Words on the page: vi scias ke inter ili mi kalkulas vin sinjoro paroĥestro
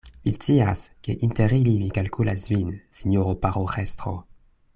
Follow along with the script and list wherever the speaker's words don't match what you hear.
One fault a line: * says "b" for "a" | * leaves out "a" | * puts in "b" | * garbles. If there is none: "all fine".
all fine